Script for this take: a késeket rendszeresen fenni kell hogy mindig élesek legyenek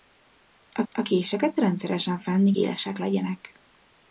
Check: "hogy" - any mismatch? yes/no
yes